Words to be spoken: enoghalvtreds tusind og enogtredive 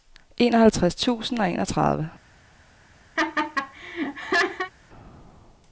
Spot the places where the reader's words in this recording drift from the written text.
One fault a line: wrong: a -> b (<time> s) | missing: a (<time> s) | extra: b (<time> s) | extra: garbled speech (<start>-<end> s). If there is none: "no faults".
no faults